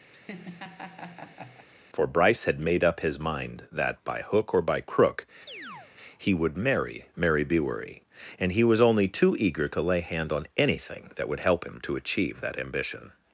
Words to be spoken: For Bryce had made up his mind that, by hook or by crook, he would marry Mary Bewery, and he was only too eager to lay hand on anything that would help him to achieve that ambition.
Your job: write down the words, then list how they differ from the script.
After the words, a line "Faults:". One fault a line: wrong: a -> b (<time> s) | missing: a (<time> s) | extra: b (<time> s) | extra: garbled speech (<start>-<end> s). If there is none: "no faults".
For Bryce had made up his mind that, by hook or by crook, he would marry Mary Bewery, and he was only too eager to lay hand on anything that would help him to achieve that ambition.
Faults:
no faults